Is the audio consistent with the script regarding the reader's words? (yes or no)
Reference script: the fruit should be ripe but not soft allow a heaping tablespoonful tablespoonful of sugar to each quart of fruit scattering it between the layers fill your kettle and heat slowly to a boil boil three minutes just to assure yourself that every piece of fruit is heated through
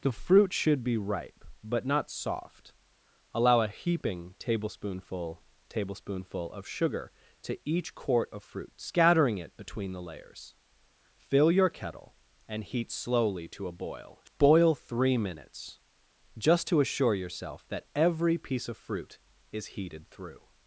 yes